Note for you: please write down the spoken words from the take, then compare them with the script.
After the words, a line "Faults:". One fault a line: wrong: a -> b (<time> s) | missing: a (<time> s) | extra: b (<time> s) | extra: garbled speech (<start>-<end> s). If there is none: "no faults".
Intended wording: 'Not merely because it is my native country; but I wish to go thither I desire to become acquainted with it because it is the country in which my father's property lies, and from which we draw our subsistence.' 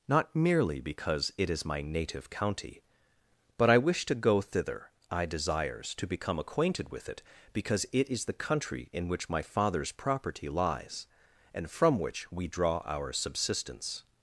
'Not merely because it is my native county; but I wish to go thither I desires to become acquainted with it because it is the country in which my father's property lies, and from which we draw our subsistence.'
Faults:
wrong: country -> county (2.3 s)
wrong: desire -> desires (5.3 s)